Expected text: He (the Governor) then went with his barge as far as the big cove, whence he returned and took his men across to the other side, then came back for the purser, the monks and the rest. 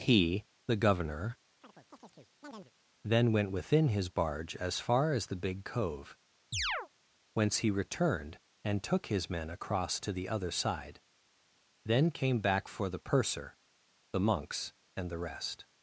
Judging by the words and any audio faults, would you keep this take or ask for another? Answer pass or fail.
fail